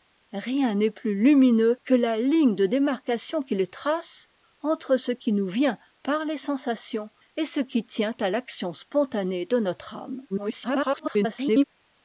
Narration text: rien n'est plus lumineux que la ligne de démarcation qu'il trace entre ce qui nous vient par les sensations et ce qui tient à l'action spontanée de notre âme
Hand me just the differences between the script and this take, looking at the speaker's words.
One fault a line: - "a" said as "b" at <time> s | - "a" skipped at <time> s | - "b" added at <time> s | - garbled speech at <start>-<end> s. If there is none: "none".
- garbled speech at 10.3-11.6 s